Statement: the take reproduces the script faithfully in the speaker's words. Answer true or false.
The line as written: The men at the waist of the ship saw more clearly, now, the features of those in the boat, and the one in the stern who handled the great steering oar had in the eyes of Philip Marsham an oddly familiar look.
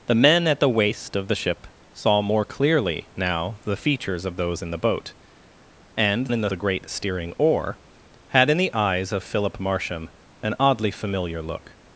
false